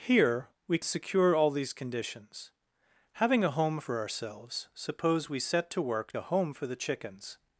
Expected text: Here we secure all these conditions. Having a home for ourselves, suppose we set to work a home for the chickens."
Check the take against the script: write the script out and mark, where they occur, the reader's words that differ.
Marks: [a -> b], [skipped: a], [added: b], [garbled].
Here we secure all these conditions. Having a home for ourselves, suppose we set to work a home for the chickens."